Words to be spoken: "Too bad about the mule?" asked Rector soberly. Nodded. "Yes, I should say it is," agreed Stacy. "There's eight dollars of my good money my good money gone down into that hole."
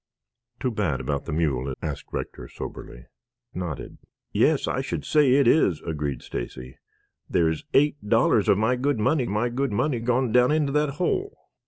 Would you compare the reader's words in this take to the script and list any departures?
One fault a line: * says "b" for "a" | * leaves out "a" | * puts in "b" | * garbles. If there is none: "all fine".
all fine